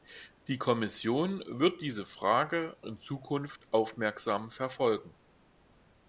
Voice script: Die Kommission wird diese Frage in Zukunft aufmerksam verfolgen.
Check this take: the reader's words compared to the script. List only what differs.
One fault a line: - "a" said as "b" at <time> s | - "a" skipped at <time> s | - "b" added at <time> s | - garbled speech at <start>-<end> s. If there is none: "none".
none